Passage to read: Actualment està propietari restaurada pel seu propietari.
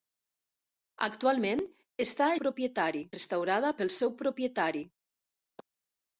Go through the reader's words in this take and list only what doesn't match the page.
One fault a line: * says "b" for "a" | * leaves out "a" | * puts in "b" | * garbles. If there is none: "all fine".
all fine